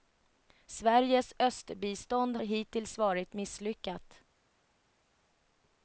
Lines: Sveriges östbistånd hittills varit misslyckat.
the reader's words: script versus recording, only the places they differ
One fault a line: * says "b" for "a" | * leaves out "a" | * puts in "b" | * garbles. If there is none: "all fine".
all fine